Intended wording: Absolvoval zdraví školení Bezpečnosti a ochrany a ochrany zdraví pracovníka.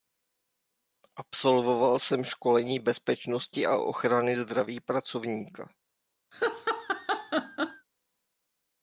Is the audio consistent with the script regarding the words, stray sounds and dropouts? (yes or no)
no